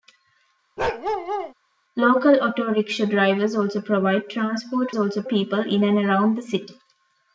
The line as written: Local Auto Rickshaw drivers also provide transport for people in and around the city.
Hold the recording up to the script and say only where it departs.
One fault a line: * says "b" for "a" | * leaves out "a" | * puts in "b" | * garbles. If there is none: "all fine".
* says "also" for "for"